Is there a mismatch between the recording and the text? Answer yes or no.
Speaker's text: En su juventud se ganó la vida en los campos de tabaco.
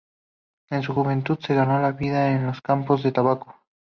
no